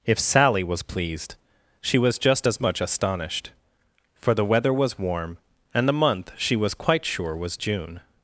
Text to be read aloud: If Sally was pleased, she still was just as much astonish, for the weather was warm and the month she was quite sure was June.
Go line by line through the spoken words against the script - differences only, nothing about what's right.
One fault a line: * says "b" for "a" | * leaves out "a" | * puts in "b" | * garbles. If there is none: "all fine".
* leaves out "still"
* says "astonished" for "astonish"